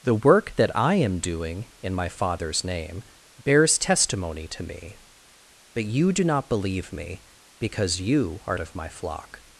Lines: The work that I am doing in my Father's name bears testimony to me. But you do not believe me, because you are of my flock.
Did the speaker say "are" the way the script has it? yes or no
yes